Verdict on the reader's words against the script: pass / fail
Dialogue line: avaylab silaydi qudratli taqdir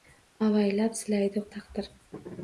fail